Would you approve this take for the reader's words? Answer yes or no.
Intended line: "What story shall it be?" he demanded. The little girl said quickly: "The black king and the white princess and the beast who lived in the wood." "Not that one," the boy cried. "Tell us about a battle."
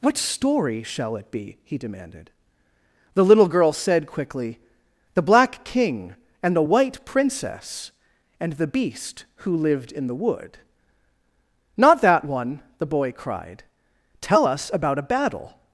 yes